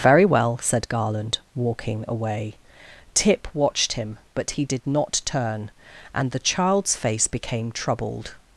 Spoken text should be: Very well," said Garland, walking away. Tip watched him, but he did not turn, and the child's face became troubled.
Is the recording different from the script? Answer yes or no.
no